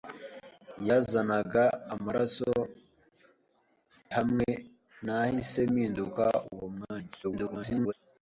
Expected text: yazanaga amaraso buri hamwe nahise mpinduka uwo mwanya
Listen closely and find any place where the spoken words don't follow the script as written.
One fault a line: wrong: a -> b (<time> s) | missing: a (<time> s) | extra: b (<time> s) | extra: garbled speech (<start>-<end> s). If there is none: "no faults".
missing: buri (2.5 s)
extra: garbled speech (7.2-7.9 s)